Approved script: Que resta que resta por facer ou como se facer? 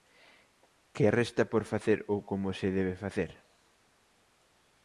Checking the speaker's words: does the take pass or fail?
fail